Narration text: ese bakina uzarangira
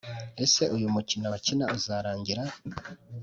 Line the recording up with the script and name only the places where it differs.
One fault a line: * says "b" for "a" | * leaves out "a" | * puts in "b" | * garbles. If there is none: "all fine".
* puts in "uyu mukino"